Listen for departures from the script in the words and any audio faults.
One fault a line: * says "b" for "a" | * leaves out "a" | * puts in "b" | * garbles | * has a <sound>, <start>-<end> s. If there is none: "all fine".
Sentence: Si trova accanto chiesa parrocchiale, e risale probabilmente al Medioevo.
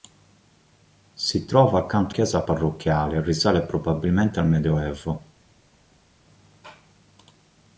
all fine